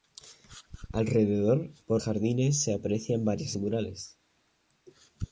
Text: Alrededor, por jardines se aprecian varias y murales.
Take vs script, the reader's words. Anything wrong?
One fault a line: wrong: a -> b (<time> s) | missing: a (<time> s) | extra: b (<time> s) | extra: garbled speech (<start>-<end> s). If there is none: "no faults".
no faults